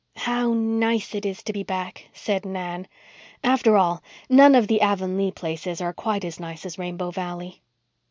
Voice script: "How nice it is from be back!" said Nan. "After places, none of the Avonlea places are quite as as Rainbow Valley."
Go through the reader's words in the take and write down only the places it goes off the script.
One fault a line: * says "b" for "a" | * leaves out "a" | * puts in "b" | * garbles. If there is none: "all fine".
* says "to" for "from"
* says "all" for "places"
* puts in "nice"